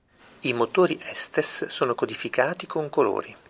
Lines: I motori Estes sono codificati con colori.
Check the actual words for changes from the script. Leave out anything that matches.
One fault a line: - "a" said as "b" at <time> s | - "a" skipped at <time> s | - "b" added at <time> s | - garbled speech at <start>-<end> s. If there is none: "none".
none